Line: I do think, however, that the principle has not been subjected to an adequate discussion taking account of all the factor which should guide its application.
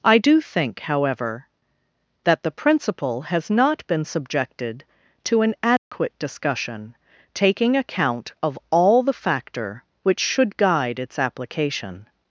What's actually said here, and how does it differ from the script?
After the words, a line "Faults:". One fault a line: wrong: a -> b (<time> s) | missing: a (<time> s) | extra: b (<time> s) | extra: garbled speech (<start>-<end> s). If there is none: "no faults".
I do think, however, that the principle has not been subjected to an adequate discussion taking account of all the factor which should guide its application.
Faults:
no faults